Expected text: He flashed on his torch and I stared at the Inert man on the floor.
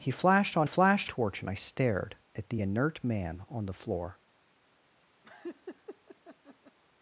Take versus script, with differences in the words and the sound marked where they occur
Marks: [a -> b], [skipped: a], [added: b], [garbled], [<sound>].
He flashed on [his -> flashed] torch and I stared at the Inert man on the floor. [laugh]